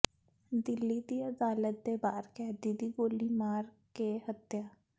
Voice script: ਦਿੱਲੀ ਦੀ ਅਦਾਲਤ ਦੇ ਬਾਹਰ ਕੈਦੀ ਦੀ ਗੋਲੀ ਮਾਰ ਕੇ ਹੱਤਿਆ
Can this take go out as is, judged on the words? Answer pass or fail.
pass